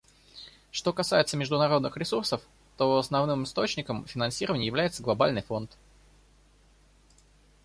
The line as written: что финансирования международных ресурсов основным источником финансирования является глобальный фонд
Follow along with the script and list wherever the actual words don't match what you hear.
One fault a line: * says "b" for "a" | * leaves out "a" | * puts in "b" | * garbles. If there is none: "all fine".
* says "касается" for "финансирования"
* puts in "то"